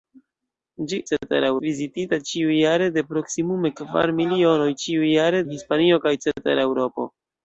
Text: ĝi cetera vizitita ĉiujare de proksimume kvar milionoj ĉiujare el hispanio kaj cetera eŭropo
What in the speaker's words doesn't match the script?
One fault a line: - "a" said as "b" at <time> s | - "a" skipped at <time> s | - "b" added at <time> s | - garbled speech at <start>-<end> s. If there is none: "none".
none